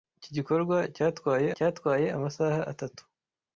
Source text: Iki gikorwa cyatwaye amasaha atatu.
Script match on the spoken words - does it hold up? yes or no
no